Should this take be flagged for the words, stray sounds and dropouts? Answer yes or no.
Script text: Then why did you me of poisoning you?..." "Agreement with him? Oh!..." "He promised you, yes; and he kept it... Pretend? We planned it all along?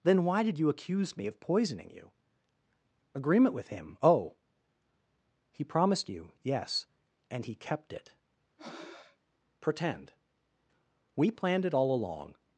yes